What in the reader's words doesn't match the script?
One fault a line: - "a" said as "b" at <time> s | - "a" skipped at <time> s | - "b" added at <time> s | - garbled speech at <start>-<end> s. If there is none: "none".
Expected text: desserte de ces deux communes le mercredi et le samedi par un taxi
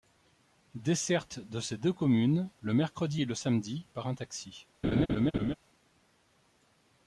none